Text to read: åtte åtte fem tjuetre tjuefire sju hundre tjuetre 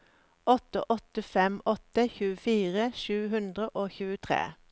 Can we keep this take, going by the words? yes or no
no